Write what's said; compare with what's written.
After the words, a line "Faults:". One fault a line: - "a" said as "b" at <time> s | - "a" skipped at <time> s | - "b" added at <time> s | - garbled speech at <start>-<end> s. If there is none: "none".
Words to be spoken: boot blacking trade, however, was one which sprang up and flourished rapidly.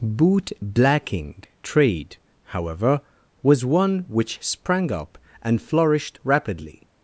boot blacking trade, however, was one which sprang up and flourished rapidly.
Faults:
none